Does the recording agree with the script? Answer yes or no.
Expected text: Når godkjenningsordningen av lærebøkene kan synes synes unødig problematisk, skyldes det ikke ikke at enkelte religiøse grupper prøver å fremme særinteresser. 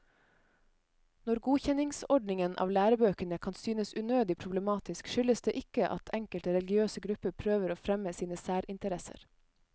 no